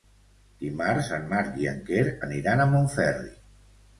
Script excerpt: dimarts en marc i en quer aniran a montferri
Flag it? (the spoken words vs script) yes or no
no